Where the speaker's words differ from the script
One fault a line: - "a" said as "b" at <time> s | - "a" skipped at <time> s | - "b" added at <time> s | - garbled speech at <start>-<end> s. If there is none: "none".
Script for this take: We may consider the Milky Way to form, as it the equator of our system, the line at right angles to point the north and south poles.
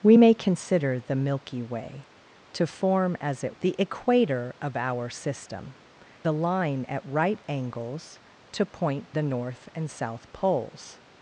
none